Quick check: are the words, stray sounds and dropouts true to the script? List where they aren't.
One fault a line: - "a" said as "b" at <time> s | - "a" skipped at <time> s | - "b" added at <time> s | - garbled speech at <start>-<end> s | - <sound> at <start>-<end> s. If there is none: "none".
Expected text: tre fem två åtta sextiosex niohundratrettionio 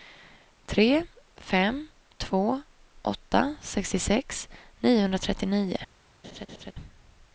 - laugh at 6.2-6.7 s